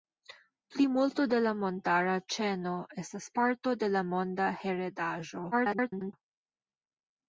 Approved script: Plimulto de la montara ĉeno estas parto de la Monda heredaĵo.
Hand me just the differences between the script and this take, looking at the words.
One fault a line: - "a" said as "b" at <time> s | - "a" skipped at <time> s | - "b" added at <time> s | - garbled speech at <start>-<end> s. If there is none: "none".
- garbled speech at 5.5-6.1 s